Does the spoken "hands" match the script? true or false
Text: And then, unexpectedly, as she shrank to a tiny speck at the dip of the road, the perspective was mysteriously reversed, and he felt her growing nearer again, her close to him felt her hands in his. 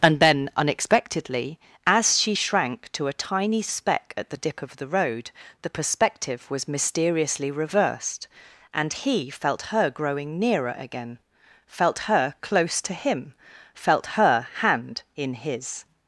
false